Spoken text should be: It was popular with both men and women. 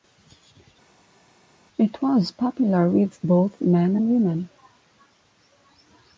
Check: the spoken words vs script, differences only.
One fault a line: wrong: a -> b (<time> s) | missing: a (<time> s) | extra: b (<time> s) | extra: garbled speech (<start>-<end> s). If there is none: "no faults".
no faults